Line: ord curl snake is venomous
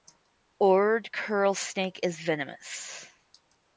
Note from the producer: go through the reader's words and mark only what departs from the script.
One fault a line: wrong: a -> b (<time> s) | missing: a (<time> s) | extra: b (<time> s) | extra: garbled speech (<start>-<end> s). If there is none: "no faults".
no faults